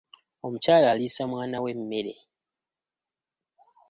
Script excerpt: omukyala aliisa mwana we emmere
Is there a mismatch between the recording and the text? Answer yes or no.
no